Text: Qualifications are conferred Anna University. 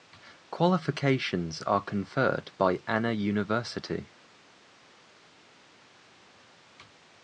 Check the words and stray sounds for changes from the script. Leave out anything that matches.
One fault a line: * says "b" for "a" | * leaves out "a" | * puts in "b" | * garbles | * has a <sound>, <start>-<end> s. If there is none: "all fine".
* puts in "by"